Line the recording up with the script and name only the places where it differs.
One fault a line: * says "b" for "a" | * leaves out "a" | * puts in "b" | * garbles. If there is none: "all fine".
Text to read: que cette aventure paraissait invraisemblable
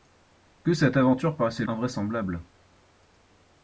all fine